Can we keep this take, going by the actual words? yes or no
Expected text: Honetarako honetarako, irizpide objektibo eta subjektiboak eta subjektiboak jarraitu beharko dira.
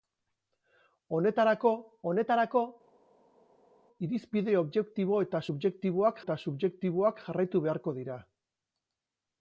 yes